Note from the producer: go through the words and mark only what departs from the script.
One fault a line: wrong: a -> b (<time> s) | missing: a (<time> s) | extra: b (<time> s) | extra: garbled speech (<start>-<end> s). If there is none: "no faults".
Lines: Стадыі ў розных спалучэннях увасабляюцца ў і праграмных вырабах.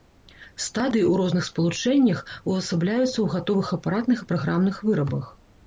extra: гатовых апаратных (3.4 s)